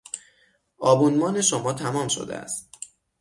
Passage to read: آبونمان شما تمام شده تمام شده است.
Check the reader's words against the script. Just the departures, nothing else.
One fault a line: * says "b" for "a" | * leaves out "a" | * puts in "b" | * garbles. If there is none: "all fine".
* leaves out "تمام شده"